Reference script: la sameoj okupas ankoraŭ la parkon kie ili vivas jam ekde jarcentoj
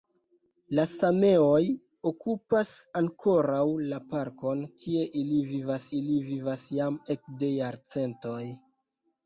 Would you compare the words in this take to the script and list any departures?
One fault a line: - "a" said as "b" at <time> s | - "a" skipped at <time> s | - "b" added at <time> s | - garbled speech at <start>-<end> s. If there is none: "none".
- "ili vivas" added at 6.0 s